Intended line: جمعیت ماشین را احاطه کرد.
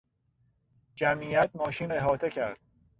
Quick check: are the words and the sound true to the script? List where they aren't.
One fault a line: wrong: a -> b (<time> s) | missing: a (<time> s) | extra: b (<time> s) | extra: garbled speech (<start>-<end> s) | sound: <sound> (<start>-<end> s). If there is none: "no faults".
missing: را (1.9 s)